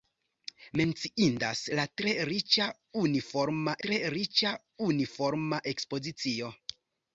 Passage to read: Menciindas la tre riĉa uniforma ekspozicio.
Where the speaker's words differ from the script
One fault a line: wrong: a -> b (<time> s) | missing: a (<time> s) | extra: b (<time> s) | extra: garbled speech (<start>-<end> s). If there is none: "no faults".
extra: tre riĉa uniforma (3.9 s)